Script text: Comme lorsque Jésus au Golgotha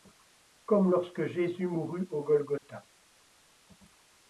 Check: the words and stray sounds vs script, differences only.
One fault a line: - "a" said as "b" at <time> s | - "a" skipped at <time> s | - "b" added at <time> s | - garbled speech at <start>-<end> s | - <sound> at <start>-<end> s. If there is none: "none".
- "mourut" added at 1.7 s
- dropout at 2.6-2.6 s